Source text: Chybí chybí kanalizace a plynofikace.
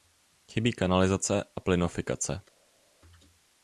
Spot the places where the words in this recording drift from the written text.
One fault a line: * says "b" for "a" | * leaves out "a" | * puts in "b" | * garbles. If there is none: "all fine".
* leaves out "chybí"